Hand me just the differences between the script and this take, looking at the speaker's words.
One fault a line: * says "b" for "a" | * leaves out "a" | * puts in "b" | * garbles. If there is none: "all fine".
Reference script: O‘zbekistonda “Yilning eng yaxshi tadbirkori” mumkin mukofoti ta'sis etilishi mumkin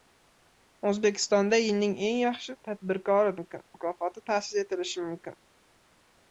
all fine